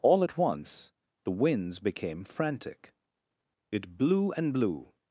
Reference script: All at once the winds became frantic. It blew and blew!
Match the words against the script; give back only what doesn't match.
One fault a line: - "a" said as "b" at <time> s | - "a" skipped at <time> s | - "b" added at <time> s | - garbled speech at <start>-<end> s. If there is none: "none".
none